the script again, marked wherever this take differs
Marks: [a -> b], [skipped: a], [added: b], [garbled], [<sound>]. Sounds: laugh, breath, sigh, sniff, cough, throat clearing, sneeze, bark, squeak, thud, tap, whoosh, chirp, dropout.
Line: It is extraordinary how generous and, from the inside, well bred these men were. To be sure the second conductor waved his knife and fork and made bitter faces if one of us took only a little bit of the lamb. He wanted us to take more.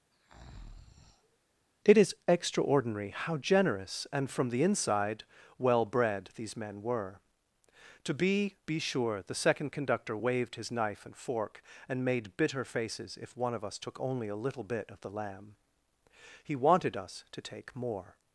[breath] It is extraordinary how generous and, from the inside, well bred these men were. To be [added: be] sure the second conductor waved his knife and fork and made bitter faces if one of us took only a little bit of the lamb. He wanted us to take more.